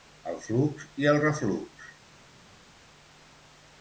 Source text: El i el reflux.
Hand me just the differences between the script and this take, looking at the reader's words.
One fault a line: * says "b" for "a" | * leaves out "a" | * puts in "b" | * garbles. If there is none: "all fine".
* puts in "flux"